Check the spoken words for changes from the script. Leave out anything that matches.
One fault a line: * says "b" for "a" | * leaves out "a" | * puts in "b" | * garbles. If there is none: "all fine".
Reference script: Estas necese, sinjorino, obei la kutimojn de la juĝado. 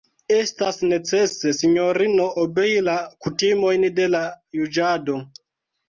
all fine